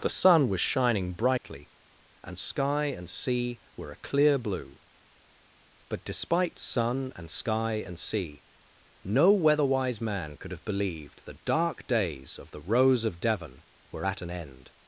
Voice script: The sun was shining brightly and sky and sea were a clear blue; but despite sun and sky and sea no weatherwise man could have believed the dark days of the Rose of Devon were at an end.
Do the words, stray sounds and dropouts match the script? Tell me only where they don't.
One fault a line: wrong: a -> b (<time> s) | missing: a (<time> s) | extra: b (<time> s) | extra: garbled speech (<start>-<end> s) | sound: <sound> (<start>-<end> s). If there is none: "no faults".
sound: dropout (1.4-1.4 s)